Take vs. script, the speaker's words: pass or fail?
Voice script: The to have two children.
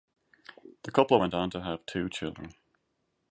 fail